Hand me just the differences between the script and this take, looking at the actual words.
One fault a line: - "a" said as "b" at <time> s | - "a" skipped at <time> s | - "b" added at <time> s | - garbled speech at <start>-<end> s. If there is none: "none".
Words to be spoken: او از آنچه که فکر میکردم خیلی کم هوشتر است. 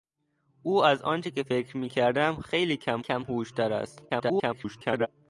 - "کم" added at 3.0 s
- garbled speech at 4.1-5.1 s